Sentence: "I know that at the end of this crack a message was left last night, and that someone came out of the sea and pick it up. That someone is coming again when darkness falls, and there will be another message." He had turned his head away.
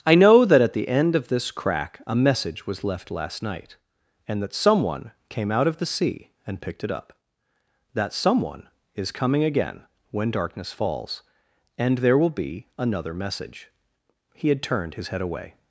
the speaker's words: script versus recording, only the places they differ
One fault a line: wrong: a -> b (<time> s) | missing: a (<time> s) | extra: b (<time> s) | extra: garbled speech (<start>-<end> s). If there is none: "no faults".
wrong: pick -> picked (6.6 s)